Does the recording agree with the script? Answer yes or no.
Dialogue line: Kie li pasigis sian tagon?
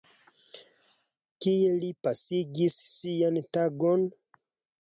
yes